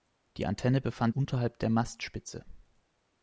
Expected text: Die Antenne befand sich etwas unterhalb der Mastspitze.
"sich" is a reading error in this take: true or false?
true